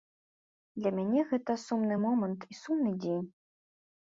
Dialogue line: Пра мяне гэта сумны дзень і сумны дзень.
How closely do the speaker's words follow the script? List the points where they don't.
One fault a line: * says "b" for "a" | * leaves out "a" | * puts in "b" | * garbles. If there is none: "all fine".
* says "Для" for "Пра"
* says "момант" for "дзень"